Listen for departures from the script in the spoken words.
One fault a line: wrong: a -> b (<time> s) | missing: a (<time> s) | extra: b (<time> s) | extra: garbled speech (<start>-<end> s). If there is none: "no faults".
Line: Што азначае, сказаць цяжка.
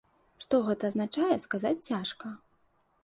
extra: гэта (0.7 s)